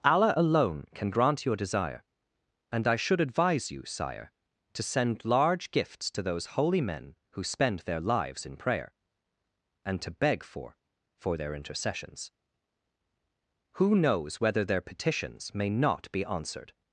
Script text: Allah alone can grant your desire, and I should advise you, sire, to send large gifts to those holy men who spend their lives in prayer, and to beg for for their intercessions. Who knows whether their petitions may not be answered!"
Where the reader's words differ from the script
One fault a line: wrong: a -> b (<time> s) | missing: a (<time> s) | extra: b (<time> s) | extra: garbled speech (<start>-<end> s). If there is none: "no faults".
no faults